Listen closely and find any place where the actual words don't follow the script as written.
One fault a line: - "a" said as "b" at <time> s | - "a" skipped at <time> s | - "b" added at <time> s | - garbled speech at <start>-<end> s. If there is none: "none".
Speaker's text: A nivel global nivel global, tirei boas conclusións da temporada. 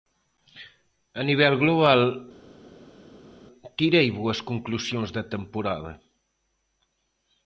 - "nivel global" skipped at 2.0 s